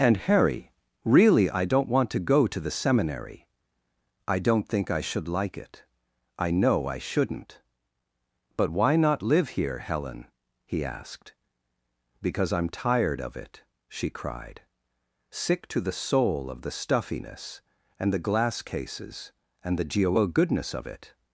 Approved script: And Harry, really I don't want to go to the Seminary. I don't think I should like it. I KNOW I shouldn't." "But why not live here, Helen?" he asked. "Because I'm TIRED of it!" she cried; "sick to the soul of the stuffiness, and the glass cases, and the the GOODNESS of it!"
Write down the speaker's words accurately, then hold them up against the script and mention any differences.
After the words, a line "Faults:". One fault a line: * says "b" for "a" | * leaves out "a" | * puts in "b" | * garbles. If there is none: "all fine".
And Harry, really I don't want to go to the Seminary. I don't think I should like it. I KNOW I shouldn't." "But why not live here, Helen?" he asked. "Because I'm TIRED of it!" she cried; "sick to the soul of the stuffiness, and the glass cases, and the geo GOODNESS of it!"
Faults:
* says "geo" for "the"